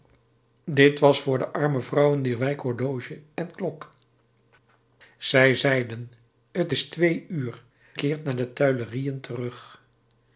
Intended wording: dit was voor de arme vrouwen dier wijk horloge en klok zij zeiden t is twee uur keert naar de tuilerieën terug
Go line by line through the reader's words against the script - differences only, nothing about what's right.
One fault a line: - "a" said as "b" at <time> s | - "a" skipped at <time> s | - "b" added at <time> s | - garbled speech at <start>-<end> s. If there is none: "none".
none